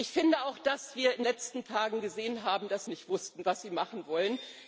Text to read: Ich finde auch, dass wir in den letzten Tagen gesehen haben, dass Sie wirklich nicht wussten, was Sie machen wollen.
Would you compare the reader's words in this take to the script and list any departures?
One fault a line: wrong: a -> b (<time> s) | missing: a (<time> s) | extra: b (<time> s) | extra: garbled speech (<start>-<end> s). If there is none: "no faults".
missing: den (1.2 s)
missing: Sie wirklich (2.9 s)